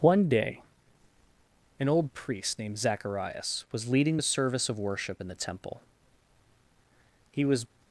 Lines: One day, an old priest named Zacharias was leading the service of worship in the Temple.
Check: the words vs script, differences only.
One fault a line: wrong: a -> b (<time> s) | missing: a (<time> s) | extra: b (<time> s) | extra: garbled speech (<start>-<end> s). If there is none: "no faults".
extra: He was (7.3 s)